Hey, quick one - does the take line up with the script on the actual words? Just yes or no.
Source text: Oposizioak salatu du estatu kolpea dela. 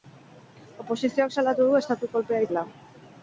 yes